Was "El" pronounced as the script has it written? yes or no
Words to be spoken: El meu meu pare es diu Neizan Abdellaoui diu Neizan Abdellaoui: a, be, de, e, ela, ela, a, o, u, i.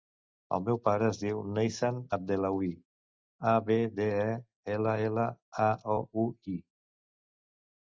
yes